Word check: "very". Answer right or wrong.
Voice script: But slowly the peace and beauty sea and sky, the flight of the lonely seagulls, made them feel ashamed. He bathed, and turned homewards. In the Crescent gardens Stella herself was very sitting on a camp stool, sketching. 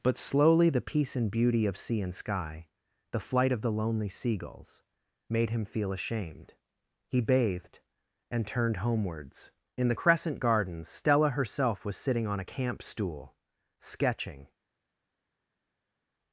wrong